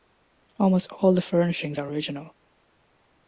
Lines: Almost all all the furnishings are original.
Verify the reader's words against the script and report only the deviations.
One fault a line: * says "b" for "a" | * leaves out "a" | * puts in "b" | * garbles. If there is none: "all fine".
* leaves out "all"